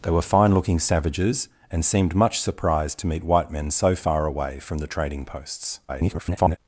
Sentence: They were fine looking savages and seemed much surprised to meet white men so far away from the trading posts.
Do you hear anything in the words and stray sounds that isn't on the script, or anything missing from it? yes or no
yes